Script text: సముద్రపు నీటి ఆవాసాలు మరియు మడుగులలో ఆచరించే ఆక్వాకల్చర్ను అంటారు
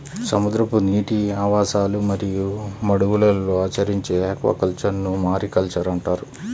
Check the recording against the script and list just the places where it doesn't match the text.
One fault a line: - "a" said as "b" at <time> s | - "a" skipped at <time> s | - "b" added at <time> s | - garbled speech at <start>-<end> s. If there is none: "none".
- "మారికల్చర్" added at 5.3 s